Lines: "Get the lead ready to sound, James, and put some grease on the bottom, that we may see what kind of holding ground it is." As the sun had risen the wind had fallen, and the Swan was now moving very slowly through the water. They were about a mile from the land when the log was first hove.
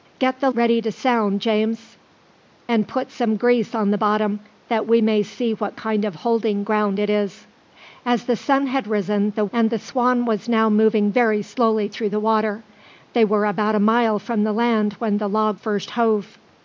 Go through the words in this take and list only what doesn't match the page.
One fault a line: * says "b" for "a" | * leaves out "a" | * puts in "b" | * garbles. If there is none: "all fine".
* leaves out "lead"
* leaves out "wind had fallen"
* leaves out "was"